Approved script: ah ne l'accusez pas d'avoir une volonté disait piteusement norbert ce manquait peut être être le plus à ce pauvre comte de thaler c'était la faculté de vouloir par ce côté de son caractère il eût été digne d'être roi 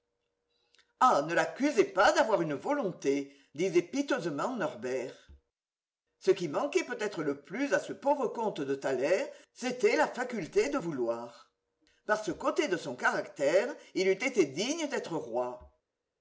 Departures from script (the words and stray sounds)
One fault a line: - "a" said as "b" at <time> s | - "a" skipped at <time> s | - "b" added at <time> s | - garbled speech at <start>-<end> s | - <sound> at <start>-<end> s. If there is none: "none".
- "qui" added at 6.3 s
- "être" skipped at 7.2 s